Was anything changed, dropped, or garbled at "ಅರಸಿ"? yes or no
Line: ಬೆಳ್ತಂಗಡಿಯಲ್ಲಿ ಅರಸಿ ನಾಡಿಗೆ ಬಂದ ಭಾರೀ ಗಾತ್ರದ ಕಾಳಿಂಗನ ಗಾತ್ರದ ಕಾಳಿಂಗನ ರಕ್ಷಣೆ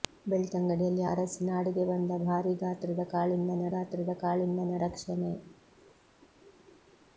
no